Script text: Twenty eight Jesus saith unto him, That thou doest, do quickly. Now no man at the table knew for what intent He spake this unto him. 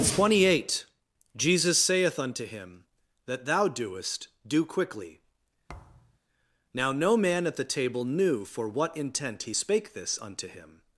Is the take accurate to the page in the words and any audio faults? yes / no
no